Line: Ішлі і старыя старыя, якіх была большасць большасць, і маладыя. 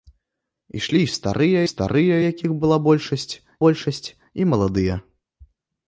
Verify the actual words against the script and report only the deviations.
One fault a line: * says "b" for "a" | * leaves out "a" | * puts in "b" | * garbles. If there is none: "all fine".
all fine